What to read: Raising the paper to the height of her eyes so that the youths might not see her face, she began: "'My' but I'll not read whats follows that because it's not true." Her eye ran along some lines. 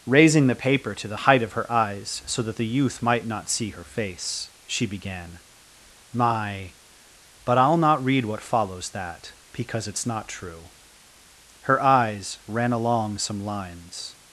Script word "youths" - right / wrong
wrong